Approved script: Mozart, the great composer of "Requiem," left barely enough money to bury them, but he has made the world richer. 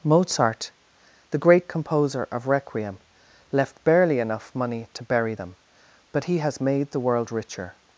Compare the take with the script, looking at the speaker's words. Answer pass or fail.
pass